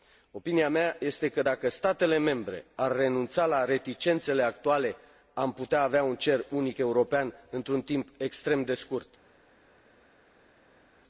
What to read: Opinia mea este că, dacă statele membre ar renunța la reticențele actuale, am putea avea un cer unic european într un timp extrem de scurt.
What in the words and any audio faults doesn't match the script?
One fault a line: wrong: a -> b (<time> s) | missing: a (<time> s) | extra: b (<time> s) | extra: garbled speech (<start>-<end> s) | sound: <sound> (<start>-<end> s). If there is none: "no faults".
no faults